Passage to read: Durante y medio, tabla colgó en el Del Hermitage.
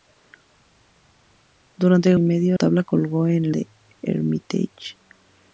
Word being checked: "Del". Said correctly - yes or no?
yes